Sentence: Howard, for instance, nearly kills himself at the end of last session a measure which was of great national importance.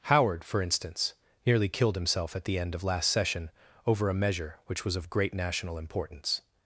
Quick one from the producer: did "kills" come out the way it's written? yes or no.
no